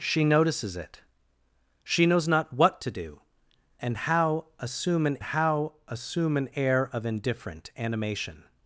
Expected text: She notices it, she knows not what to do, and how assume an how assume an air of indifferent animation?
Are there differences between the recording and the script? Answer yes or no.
no